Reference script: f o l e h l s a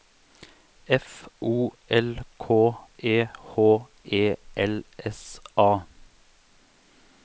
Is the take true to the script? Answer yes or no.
no